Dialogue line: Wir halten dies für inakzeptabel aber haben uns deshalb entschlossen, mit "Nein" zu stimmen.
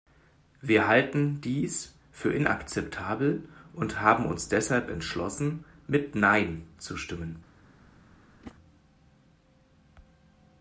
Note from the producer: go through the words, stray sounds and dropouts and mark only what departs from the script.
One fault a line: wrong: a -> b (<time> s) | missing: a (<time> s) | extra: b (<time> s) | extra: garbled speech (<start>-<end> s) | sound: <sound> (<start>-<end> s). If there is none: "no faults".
wrong: aber -> und (3.7 s)
sound: whoosh (8.4-8.6 s)